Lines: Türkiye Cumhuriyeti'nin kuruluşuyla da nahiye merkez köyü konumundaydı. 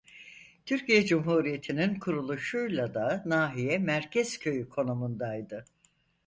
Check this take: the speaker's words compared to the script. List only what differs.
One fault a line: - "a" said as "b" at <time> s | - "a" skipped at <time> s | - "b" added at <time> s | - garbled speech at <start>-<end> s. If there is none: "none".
none